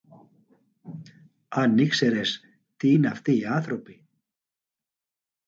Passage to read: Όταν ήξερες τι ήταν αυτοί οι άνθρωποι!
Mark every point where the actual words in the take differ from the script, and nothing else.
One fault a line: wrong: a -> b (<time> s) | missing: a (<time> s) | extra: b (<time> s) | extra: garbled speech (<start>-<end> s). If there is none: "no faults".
wrong: Όταν -> Αν (1.5 s)
wrong: ήταν -> είναι (2.9 s)